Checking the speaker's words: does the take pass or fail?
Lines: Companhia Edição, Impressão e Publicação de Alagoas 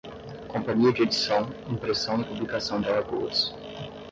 fail